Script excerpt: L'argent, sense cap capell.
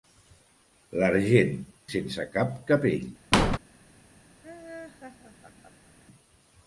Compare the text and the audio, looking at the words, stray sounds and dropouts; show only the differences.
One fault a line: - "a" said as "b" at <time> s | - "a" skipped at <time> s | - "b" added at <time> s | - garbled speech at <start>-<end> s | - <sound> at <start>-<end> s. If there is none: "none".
- squeak at 3.3-3.6 s
- laugh at 4.4-5.9 s